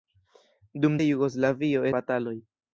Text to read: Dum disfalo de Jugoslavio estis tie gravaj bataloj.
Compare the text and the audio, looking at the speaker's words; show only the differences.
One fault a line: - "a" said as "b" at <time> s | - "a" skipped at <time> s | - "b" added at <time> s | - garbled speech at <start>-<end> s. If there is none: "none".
- "disfalo" skipped at 0.9 s
- "estis tie gravaj" skipped at 1.9 s